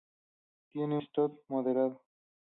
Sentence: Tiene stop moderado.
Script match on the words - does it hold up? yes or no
yes